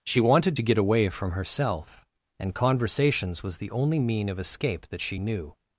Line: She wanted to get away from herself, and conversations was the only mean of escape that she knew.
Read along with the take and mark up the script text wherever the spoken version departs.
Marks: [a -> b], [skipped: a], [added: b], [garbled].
She wanted to get away from herself, and conversations was the only mean of escape that she knew.